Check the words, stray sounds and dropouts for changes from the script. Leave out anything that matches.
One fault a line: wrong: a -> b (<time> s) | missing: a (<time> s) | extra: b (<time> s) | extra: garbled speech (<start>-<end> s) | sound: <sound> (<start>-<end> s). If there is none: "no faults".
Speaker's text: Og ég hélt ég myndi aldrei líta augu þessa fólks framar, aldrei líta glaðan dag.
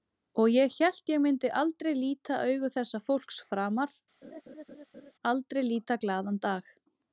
sound: laugh (4.2-5.1 s)